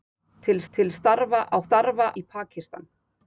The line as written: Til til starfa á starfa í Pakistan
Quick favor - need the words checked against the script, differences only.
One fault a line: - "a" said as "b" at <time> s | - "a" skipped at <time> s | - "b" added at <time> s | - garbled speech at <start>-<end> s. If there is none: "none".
none